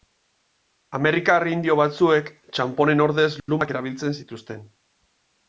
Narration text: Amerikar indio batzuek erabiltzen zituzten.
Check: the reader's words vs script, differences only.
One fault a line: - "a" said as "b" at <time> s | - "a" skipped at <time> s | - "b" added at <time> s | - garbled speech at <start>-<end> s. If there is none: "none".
- "txanponen ordez lumak" added at 2.6 s